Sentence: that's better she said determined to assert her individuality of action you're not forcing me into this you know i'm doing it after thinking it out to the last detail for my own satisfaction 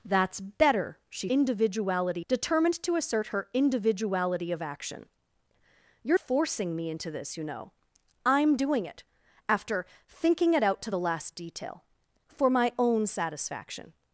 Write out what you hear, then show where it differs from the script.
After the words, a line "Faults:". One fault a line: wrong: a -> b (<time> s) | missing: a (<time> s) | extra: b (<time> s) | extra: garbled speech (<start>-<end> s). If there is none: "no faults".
that's better she individuality determined to assert her individuality of action you're forcing me into this you know i'm doing it after thinking it out to the last detail for my own satisfaction
Faults:
wrong: said -> individuality (1.3 s)
missing: not (6.2 s)